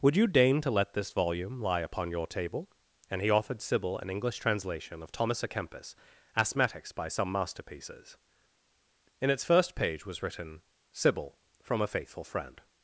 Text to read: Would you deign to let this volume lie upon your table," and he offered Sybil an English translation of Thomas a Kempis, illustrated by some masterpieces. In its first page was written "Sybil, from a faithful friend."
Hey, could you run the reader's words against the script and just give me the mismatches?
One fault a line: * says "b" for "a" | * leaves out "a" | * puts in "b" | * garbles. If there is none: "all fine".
* says "asthmatics" for "illustrated"